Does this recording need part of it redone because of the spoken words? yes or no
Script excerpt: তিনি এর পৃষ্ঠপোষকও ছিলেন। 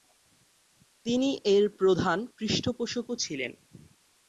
yes